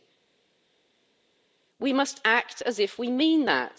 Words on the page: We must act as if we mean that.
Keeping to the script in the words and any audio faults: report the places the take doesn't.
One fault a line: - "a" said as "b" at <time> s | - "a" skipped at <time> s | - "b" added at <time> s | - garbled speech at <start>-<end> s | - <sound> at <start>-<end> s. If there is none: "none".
none